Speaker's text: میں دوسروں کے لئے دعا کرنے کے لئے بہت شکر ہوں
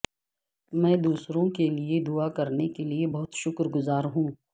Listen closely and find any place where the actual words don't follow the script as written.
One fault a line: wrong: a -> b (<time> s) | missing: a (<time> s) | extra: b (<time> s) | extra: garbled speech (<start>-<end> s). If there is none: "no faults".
extra: گزار (3.8 s)